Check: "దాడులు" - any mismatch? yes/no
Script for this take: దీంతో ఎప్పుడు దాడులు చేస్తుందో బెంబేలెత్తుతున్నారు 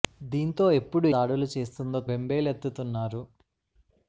no